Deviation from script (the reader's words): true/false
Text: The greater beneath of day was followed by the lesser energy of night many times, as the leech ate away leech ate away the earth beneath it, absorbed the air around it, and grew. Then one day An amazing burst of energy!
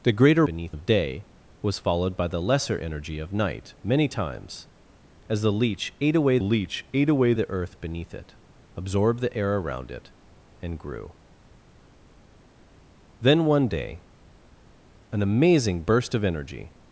false